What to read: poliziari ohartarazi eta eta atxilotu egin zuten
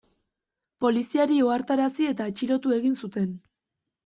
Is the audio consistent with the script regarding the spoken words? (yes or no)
no